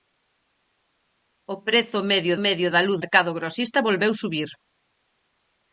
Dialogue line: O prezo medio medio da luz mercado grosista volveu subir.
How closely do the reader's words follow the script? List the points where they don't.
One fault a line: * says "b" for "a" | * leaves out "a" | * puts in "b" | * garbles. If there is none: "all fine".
all fine